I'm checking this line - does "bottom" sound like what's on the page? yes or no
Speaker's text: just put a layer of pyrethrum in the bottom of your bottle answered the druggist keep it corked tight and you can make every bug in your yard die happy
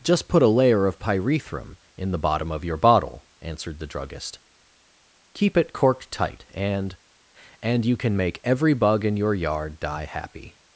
yes